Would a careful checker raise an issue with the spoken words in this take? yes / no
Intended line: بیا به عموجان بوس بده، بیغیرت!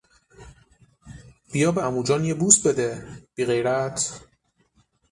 yes